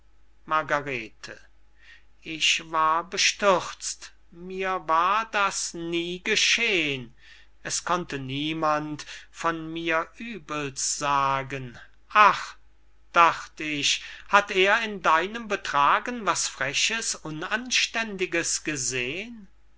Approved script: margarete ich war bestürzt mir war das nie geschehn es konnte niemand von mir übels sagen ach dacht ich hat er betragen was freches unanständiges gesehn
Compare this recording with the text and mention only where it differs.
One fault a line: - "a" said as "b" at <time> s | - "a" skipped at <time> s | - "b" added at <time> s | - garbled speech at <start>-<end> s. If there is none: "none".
- "in deinem" added at 14.8 s